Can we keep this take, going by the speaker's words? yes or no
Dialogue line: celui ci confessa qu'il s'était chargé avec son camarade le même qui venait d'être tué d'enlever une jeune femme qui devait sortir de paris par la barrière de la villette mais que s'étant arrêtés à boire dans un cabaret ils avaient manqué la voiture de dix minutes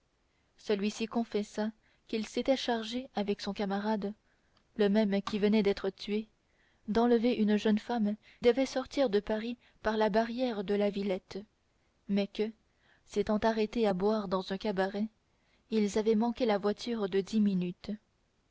no